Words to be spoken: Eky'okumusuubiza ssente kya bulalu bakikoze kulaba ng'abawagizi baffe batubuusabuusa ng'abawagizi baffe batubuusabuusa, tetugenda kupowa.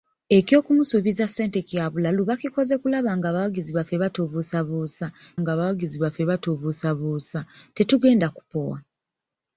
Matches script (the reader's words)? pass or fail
pass